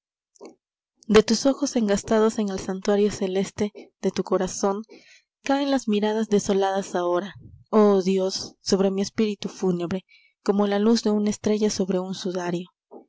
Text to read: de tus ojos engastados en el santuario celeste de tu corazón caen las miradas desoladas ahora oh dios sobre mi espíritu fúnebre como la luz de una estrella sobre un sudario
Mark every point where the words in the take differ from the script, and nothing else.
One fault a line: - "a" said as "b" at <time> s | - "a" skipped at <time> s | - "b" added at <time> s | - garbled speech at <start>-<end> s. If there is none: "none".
none